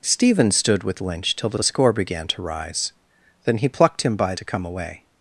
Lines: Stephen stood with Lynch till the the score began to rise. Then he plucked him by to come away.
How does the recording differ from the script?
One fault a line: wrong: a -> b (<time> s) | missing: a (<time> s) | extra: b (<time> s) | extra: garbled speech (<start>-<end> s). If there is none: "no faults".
no faults